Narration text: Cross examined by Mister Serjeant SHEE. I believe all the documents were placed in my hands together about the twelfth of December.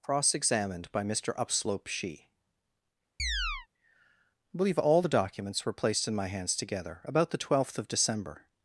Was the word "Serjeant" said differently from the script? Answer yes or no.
yes